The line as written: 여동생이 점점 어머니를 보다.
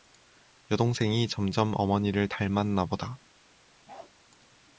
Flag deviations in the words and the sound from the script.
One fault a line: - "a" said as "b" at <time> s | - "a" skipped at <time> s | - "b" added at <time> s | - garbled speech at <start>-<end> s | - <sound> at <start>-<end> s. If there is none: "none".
- "닮았나" added at 2.2 s
- bark at 3.9-4.1 s